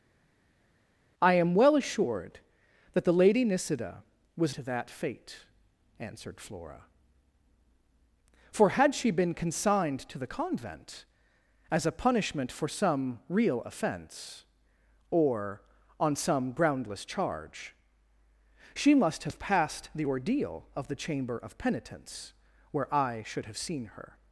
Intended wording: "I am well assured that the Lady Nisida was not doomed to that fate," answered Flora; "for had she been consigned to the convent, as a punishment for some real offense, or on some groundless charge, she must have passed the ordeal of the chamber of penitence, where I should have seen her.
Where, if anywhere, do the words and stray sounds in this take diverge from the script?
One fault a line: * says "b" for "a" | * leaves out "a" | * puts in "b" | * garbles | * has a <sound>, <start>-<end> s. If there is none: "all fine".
* leaves out "not doomed"